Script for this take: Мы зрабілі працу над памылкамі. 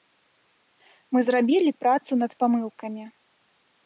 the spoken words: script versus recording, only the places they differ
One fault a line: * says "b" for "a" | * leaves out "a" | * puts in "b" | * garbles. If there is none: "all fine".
all fine